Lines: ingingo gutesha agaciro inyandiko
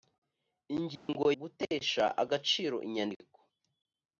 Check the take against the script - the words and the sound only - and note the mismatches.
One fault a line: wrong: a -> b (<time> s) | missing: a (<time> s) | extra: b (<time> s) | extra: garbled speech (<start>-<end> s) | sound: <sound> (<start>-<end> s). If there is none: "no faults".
sound: dropout (1.0-1.1 s)